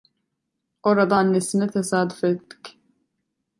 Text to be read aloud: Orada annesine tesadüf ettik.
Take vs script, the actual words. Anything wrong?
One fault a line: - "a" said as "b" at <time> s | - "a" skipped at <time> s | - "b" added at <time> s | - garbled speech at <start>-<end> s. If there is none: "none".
none